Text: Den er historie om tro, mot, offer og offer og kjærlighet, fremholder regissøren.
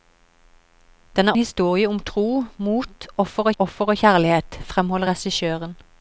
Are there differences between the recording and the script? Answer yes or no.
no